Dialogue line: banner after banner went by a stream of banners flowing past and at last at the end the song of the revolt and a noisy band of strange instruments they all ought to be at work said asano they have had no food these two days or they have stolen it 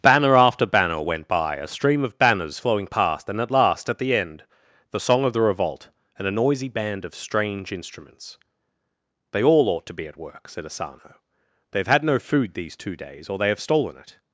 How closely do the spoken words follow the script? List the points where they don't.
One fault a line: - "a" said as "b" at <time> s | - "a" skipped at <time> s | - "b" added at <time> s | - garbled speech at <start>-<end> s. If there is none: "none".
none